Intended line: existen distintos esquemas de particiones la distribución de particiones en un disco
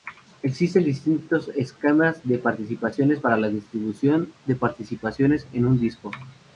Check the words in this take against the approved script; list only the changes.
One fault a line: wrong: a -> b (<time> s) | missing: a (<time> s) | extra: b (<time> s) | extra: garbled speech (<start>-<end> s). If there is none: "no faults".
extra: para (3.2 s)